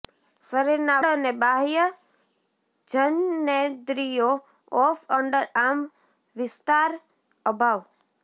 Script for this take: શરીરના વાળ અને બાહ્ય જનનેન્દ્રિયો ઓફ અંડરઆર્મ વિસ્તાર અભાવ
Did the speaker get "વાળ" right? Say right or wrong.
wrong